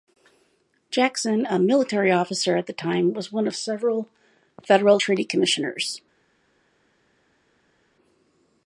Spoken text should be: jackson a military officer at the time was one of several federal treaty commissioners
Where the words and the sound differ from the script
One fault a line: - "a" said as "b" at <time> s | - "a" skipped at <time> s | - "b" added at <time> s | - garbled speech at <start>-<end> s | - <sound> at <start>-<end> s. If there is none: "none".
none